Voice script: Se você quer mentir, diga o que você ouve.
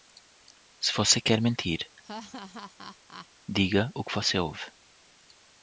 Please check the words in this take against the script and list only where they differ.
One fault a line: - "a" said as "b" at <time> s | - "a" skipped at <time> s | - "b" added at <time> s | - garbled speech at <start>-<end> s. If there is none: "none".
none